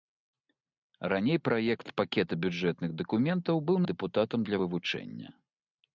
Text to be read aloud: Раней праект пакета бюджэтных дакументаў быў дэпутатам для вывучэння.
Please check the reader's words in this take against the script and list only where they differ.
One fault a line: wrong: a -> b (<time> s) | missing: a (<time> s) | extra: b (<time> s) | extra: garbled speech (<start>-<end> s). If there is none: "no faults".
no faults